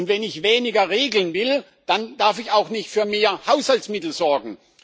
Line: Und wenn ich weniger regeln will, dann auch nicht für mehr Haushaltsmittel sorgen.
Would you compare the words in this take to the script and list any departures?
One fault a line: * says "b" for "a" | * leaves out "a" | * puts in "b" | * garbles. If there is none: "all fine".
* puts in "darf ich"